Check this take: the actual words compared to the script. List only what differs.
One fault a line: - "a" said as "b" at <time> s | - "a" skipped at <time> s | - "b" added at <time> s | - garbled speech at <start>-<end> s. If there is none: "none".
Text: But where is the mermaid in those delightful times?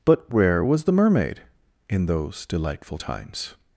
- "is" said as "was" at 0.7 s